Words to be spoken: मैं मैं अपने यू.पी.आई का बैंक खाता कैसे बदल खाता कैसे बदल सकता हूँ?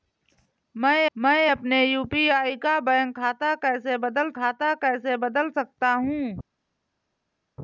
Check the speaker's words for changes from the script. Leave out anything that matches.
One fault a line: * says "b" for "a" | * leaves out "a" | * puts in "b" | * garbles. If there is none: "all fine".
all fine